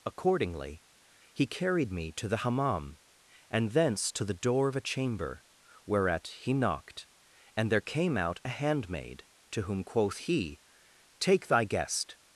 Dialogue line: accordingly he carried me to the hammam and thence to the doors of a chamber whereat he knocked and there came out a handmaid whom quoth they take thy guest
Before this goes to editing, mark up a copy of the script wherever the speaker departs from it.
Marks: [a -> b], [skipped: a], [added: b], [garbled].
accordingly he carried me to the hammam and thence to the [doors -> door] of a chamber whereat he knocked and there came out a handmaid [added: to] whom quoth [they -> he] take thy guest